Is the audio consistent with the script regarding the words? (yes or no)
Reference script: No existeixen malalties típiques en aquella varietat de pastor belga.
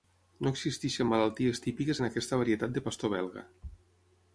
no